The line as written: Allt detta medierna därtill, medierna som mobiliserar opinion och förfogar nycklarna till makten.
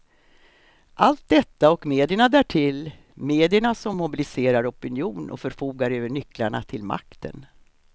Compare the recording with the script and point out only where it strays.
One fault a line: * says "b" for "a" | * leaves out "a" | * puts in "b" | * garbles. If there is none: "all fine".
* puts in "och"
* puts in "över"